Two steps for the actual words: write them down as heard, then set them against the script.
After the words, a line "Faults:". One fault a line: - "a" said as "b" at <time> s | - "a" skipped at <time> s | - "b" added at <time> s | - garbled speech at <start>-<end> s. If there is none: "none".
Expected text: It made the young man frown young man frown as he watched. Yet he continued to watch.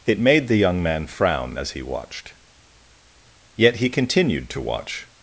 It made the young man frown as he watched. Yet he continued to watch.
Faults:
- "young man frown" skipped at 1.6 s